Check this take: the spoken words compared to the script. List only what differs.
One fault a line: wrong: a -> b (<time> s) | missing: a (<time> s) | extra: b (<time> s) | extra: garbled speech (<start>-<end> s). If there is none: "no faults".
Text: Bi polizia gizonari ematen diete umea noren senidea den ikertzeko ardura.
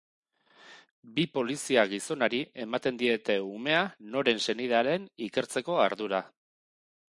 no faults